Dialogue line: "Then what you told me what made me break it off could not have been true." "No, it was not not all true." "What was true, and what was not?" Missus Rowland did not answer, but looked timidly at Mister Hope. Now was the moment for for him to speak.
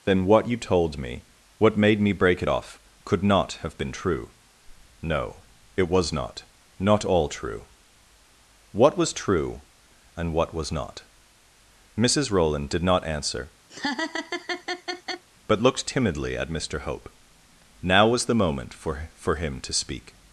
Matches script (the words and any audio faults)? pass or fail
fail